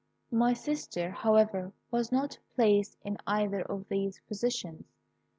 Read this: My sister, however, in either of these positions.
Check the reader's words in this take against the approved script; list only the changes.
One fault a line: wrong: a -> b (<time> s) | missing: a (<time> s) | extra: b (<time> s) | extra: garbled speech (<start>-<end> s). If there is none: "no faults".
extra: was not placed (1.9 s)